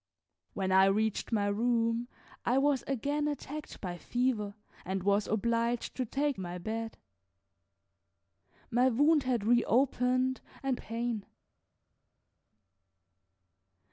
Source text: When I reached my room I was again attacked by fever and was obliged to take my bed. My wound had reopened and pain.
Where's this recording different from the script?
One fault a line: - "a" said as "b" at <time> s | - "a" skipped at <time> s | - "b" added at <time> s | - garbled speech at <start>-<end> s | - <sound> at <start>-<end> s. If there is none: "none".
none